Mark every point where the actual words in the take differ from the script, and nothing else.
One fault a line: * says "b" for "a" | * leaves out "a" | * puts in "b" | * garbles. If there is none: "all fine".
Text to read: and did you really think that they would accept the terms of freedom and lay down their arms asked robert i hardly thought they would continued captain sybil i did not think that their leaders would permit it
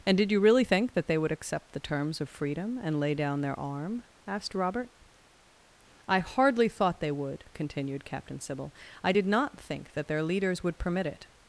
* says "arm" for "arms"